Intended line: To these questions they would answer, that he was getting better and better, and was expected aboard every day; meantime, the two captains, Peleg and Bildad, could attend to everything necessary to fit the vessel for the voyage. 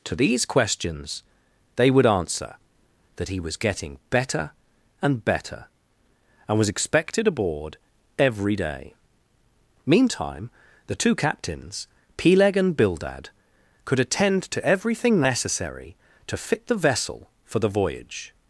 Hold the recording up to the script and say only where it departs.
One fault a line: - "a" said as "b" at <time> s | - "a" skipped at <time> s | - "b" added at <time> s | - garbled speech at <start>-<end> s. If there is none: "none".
none